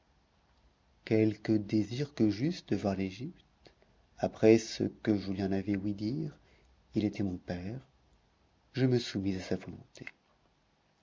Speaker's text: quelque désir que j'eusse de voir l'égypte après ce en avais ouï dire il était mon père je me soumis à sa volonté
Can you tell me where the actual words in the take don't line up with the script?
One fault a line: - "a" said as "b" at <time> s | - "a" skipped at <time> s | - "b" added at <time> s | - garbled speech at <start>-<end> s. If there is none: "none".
- "que je lui" added at 4.8 s